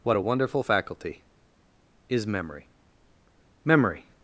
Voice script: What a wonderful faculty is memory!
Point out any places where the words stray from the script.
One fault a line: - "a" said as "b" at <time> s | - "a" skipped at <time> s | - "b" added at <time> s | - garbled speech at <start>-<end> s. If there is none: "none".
- "memory" added at 3.6 s